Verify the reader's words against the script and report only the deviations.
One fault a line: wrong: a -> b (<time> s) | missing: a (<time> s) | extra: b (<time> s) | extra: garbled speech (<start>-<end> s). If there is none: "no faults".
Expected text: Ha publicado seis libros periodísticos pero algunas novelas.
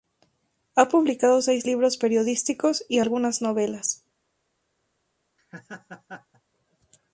wrong: pero -> y (2.9 s)